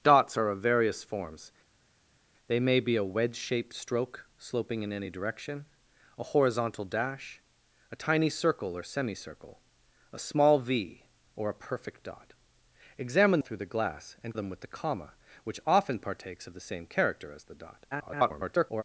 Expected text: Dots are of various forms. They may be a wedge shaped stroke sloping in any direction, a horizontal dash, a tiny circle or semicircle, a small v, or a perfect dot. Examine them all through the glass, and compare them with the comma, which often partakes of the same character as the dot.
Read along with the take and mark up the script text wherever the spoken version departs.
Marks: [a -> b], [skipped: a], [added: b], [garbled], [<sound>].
Dots are of various forms. They may be a wedge shaped stroke sloping in any direction, a horizontal dash, a tiny circle or semicircle, a small v, or a perfect dot. Examine [skipped: them all] through the glass, and [skipped: compare] them with the comma, which often partakes of the same character as the dot. [garbled]